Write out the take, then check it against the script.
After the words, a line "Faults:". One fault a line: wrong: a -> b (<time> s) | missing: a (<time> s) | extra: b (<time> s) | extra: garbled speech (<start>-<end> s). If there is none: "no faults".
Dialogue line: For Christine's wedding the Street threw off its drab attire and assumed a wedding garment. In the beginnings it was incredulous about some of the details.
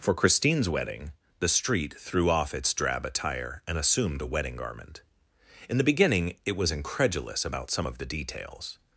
For Christine's wedding the Street threw off its drab attire and assumed a wedding garment. In the beginning it was incredulous about some of the details.
Faults:
wrong: beginnings -> beginning (5.8 s)